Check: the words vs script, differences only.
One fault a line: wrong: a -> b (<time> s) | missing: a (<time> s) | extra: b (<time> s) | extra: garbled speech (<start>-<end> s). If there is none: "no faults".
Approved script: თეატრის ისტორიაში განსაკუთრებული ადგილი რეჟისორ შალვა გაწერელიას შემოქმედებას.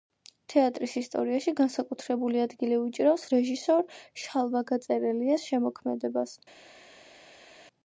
extra: უჭირავს (2.9 s)